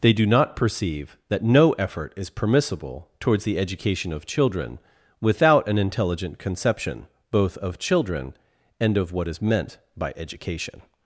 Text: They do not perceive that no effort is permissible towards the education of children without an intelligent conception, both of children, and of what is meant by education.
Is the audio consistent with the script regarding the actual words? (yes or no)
yes